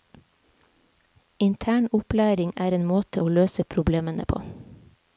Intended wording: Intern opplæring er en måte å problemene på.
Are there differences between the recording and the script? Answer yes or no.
yes